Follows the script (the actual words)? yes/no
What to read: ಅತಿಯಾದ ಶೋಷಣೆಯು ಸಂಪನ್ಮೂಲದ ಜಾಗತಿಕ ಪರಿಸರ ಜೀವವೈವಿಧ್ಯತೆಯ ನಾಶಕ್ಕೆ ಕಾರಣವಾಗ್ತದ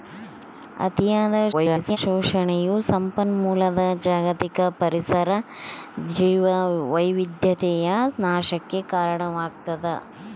no